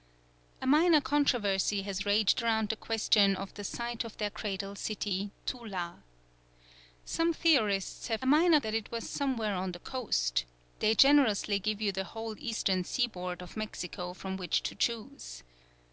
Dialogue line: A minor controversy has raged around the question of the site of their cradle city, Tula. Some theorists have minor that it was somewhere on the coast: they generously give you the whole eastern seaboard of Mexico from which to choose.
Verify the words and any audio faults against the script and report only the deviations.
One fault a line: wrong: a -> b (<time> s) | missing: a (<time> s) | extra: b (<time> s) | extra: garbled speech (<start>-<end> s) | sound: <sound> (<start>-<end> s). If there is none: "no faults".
no faults